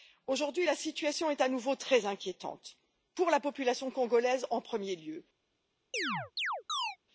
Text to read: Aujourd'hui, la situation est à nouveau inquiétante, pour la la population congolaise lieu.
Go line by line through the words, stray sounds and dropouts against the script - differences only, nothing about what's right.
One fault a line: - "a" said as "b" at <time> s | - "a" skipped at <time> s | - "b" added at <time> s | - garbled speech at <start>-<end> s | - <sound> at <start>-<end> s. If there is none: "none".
- "très" added at 1.8 s
- "la" skipped at 3.4 s
- "en premier" added at 4.5 s
- chirp at 5.9-7.0 s